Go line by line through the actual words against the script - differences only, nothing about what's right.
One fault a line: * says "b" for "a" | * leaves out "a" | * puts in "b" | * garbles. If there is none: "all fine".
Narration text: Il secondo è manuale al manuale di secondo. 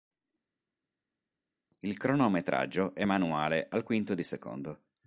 * says "cronometraggio" for "secondo"
* says "quinto" for "manuale"